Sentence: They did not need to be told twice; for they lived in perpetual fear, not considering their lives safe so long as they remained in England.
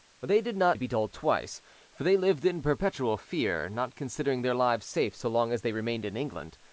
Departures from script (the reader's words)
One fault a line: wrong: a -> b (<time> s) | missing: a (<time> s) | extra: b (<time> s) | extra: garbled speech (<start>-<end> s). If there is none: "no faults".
missing: need (0.8 s)